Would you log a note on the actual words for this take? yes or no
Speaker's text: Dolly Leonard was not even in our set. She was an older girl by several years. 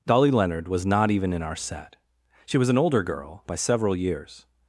no